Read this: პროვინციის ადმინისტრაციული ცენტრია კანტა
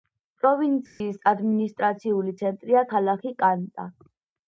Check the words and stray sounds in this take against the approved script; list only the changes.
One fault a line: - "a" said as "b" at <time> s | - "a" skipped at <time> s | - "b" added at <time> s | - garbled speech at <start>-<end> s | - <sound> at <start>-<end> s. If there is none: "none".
- dropout at 0.9-1.0 s
- "ქალაქი" added at 2.9 s